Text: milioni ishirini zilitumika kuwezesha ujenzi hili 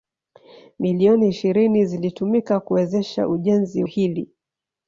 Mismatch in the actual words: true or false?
false